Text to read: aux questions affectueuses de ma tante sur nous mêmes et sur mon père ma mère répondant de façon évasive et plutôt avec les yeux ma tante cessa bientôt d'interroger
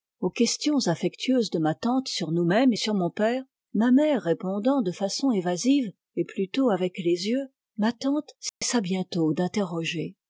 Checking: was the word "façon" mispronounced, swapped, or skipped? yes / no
no